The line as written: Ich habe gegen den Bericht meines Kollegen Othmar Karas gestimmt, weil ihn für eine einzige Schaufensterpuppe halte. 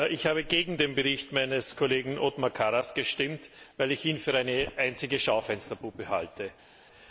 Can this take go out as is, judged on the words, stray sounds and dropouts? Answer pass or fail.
fail